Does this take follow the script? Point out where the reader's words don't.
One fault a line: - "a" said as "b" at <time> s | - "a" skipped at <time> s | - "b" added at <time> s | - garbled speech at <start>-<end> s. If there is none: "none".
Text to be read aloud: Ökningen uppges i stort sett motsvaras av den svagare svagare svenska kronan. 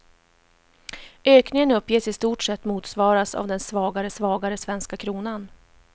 none